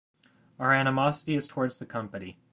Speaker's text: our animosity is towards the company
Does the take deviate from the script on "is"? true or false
false